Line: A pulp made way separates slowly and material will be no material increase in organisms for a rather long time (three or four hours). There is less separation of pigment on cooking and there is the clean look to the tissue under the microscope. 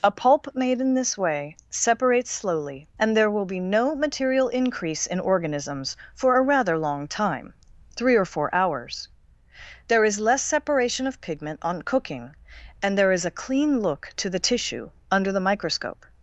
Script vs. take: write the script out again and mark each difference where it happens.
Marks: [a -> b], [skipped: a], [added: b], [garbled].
A pulp made [added: in this] way separates slowly and [material -> there] will be no material increase in organisms for a rather long time (three or four hours). There is less separation of pigment on cooking and there is [the -> a] clean look to the tissue under the microscope.